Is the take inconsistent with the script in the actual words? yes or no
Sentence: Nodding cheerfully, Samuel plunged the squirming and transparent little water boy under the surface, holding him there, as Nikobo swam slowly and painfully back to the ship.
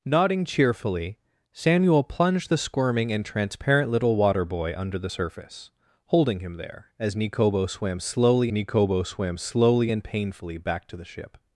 yes